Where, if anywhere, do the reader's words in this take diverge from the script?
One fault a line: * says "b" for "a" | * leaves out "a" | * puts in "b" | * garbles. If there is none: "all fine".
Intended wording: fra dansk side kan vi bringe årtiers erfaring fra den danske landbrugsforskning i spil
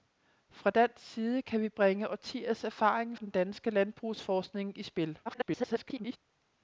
* leaves out "fra"
* garbles